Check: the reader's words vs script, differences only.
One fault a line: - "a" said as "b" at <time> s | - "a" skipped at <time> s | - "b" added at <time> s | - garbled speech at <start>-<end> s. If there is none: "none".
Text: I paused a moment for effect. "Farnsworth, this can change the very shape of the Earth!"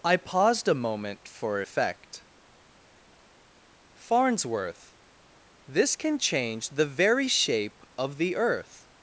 none